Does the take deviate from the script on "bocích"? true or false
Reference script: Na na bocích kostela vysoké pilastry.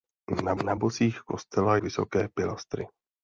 false